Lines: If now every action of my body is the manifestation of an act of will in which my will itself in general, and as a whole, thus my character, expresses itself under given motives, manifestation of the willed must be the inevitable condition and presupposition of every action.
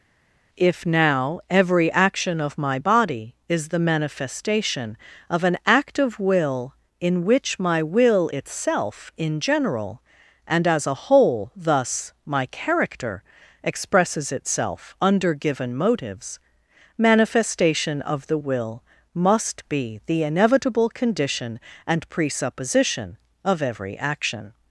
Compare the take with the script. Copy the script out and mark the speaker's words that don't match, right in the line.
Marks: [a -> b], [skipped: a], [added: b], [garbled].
If now every action of my body is the manifestation of an act of will in which my will itself in general, and as a whole, thus my character, expresses itself under given motives, manifestation of the [willed -> will] must be the inevitable condition and presupposition of every action.